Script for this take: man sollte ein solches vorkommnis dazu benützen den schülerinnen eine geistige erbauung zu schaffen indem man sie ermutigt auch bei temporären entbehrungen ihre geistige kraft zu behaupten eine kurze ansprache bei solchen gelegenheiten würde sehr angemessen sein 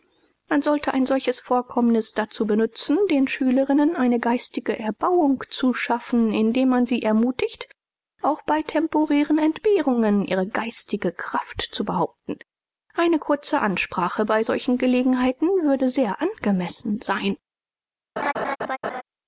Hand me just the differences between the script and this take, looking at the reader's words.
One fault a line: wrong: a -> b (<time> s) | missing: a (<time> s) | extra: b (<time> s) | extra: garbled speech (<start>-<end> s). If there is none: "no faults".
no faults